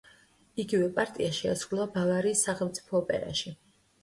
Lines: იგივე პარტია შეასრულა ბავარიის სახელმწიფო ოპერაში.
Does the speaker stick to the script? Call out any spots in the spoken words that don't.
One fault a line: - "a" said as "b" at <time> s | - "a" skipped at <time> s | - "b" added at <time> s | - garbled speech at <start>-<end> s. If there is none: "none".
none